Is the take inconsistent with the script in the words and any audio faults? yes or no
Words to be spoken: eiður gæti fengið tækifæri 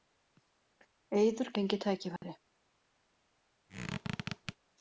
yes